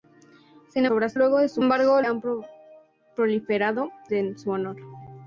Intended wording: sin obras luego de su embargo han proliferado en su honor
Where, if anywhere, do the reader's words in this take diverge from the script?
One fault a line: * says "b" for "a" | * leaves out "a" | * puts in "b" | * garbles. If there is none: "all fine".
all fine